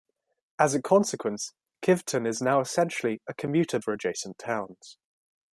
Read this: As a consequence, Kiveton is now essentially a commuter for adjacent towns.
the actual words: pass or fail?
pass